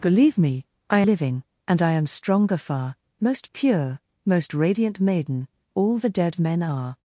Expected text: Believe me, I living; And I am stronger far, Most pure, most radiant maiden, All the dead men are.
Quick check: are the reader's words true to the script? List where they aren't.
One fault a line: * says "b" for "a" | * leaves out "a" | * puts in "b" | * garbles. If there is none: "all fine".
all fine